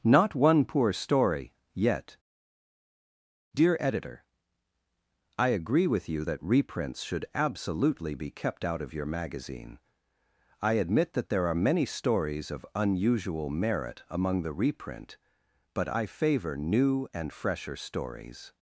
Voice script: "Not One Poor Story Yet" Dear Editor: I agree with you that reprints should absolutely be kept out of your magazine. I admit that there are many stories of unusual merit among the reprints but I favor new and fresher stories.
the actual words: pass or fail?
fail